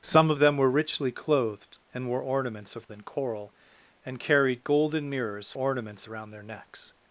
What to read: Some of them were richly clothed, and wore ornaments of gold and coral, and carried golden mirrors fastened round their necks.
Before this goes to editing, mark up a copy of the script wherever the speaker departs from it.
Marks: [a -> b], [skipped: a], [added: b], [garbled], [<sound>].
Some of them were richly clothed, and wore ornaments of [skipped: gold] and coral, and carried golden mirrors [fastened -> ornaments] round their necks.